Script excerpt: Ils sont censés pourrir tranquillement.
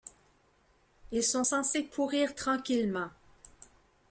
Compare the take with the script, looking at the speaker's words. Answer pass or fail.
pass